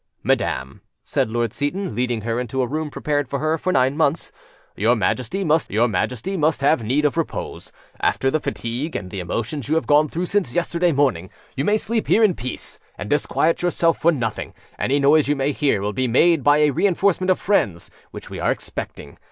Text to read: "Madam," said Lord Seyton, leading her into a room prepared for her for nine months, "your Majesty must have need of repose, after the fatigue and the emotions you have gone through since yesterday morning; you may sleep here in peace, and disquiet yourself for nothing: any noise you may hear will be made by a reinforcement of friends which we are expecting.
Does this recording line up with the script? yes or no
no